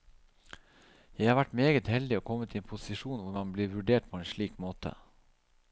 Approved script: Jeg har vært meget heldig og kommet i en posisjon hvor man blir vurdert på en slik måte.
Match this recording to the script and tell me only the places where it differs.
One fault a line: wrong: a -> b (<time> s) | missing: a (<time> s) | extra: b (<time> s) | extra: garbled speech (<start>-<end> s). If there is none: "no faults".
no faults